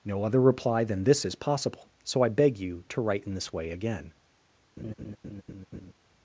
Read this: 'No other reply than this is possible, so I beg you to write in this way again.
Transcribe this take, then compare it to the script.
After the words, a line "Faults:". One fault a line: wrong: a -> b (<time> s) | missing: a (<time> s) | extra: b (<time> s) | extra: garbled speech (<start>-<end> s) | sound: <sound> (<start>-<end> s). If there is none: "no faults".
'No other reply than this is possible, so I beg you to write in this way again.
Faults:
sound: laugh (4.8-5.9 s)